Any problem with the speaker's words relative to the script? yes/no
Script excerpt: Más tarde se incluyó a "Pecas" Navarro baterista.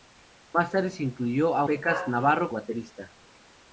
no